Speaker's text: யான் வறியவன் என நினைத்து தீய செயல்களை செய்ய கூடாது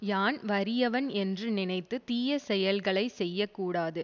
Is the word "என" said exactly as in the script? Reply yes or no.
no